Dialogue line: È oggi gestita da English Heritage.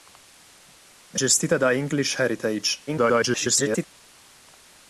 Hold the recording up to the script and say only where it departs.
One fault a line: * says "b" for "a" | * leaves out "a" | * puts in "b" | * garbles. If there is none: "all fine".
* leaves out "oggi"
* garbles